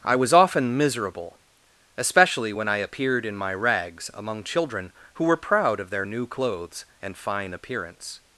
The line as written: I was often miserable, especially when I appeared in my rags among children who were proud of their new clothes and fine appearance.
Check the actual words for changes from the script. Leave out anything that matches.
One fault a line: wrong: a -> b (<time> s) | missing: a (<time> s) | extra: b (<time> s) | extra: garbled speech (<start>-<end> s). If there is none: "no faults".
no faults